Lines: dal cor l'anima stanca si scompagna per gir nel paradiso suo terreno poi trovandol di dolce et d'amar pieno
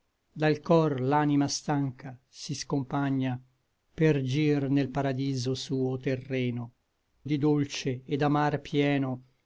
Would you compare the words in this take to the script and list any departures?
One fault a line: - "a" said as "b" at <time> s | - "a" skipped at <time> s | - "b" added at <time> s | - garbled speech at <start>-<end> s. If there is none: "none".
- "poi trovandol" skipped at 6.7 s